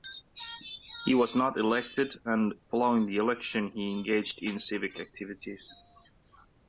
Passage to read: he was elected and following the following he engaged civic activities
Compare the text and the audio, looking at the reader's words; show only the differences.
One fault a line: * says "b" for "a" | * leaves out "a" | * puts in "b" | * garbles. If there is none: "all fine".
* puts in "not"
* says "election" for "following"
* puts in "in"